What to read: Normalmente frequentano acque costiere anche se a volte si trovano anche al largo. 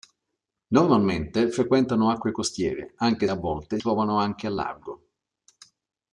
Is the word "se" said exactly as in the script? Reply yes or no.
no